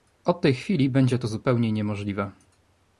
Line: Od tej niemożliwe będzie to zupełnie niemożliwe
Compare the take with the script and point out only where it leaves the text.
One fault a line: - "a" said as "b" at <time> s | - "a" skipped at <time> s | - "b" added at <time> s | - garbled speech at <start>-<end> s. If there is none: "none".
- "niemożliwe" said as "chwili" at 0.5 s